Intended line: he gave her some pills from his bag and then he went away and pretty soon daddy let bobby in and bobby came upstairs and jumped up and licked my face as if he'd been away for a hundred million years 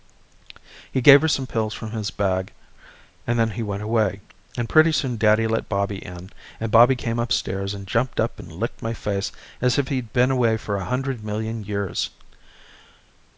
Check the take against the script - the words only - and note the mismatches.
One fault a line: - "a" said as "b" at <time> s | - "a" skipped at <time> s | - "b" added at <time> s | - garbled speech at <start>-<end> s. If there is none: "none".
none